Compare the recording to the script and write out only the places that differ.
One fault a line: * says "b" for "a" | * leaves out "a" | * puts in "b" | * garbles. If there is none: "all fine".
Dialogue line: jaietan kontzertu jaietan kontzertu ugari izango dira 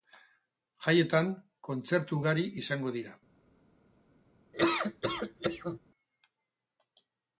* leaves out "jaietan kontzertu"